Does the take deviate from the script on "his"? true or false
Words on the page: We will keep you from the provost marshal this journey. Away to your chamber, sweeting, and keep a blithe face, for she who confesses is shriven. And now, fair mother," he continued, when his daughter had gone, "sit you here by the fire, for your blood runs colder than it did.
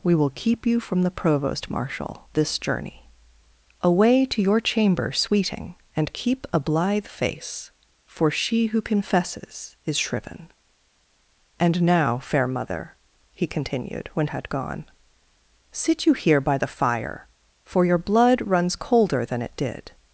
true